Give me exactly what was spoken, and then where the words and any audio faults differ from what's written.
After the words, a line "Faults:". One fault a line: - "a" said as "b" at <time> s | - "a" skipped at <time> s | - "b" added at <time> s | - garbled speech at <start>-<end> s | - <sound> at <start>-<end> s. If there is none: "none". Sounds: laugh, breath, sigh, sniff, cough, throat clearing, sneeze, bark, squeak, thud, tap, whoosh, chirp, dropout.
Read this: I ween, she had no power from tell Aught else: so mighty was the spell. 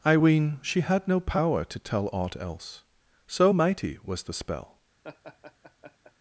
I ween, she had no power to tell Aught else: so mighty was the spell.
Faults:
- "from" said as "to" at 1.7 s
- laugh at 5.0-6.1 s